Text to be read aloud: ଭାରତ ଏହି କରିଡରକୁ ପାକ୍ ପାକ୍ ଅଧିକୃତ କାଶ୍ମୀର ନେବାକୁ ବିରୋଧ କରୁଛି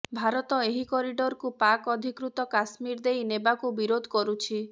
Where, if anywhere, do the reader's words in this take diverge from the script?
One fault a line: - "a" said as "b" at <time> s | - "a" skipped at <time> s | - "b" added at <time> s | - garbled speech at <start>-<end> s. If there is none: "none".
- "ପାକ୍" skipped at 1.9 s
- "ଦେଇ" added at 3.1 s